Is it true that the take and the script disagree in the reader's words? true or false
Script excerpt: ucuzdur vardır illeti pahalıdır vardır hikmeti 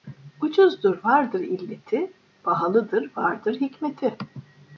false